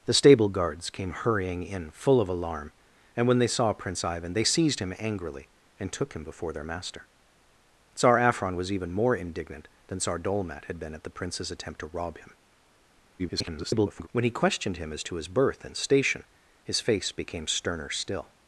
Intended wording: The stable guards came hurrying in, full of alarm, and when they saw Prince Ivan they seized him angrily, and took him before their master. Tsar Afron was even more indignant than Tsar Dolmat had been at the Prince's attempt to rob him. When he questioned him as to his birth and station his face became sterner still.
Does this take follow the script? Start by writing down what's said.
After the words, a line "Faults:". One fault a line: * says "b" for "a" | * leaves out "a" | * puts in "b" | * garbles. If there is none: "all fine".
The stable guards came hurrying in, full of alarm, and when they saw Prince Ivan they seized him angrily, and took him before their master. Tsar Afron was even more indignant than Tsar Dolmat had been at the Prince's attempt to rob him. [garbled] When he questioned him as to his birth and station his face became sterner still.
Faults:
* garbles